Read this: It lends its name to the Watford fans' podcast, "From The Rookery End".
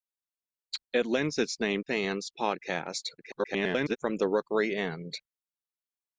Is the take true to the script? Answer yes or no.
no